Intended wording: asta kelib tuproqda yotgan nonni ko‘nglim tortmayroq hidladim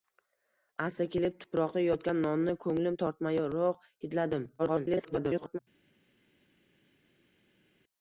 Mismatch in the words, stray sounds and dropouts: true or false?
true